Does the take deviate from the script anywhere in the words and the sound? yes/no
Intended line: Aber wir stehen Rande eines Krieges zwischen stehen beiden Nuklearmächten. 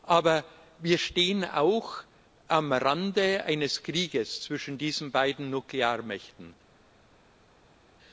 yes